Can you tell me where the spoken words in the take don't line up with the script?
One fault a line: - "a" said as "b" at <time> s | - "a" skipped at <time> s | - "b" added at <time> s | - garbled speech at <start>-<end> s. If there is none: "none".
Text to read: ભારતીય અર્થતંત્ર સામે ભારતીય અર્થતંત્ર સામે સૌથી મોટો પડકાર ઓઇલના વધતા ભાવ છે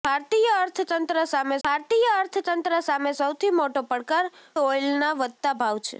none